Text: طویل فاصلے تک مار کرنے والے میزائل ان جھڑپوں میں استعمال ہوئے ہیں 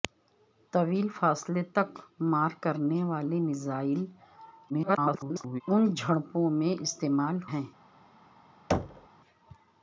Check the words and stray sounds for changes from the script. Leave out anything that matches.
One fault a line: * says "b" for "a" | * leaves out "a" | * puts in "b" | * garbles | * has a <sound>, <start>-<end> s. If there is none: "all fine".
* garbles
* leaves out "ہوئے"
* has a thud, 8.7-9.1 s